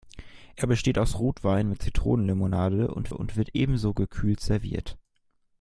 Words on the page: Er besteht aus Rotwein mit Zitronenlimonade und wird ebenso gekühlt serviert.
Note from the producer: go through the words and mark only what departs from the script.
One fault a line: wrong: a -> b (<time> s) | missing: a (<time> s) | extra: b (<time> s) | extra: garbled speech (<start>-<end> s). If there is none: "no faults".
extra: und (3.1 s)